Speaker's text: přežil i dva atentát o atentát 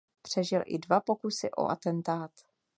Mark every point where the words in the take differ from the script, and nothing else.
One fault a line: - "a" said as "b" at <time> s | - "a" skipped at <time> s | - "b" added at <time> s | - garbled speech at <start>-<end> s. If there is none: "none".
- "atentát" said as "pokusy" at 1.0 s